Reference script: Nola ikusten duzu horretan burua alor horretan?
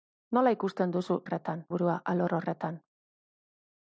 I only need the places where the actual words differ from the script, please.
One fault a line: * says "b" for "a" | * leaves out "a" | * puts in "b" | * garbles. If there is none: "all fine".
all fine